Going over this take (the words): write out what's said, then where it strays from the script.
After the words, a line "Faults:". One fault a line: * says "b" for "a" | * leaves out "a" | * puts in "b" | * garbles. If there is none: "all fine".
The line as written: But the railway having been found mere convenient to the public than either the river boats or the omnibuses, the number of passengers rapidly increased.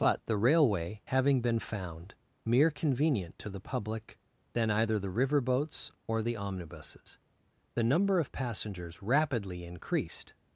But the railway having been found mere convenient to the public than either the river boats or the omnibuses, the number of passengers rapidly increased.
Faults:
all fine